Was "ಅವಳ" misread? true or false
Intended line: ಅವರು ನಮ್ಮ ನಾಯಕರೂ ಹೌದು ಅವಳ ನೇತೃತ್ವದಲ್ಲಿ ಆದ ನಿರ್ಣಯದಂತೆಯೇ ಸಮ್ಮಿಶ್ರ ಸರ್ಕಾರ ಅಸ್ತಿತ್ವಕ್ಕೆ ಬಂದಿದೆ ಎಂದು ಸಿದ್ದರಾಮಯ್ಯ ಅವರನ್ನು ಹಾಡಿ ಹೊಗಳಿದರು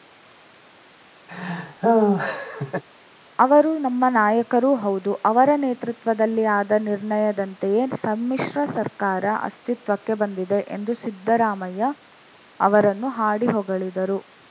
true